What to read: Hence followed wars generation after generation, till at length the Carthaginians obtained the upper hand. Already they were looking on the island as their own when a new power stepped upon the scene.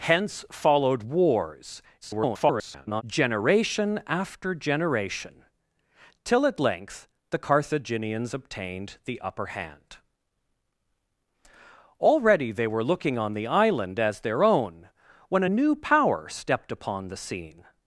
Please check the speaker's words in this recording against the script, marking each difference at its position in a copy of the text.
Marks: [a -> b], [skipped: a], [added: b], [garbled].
Hence followed wars [garbled] generation after generation, till at length the Carthaginians obtained the upper hand. Already they were looking on the island as their own when a new power stepped upon the scene.